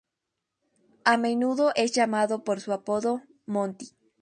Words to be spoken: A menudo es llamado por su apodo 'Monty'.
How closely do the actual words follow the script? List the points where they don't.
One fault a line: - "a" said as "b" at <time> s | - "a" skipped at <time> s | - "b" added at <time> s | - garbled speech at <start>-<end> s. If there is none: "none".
none